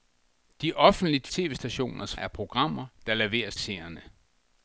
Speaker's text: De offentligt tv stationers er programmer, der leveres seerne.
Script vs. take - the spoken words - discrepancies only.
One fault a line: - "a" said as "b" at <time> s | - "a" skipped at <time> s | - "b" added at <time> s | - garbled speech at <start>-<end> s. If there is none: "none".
none